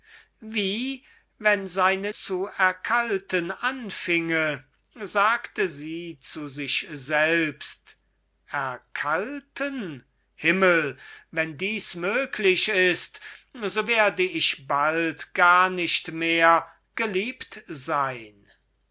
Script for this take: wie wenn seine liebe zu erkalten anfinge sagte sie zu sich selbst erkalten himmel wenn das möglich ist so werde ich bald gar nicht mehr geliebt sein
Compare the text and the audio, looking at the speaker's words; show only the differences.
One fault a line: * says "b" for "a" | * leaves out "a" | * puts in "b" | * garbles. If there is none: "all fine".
* leaves out "liebe"